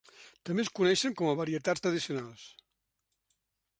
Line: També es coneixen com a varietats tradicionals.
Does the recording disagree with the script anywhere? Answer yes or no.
no